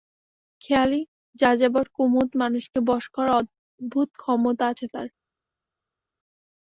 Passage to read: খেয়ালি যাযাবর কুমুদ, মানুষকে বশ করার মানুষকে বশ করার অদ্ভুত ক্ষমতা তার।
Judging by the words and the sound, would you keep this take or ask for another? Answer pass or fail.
fail